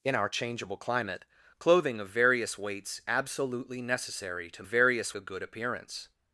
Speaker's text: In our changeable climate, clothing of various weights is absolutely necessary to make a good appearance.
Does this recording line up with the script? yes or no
no